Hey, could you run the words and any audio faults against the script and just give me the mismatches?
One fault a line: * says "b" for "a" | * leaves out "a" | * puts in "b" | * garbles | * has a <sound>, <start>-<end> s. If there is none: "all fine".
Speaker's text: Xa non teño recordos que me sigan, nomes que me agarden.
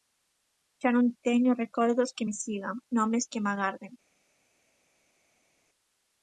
all fine